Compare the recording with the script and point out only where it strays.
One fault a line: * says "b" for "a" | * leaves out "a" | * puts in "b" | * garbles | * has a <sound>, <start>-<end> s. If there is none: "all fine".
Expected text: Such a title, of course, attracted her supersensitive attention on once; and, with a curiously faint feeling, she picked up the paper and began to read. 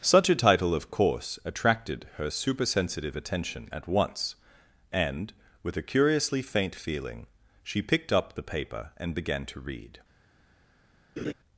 * says "at" for "on"
* has a laugh, 11.2-11.3 s